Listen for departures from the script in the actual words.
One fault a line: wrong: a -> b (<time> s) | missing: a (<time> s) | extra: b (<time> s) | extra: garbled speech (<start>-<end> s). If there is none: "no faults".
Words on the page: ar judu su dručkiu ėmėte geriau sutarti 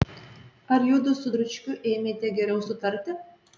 no faults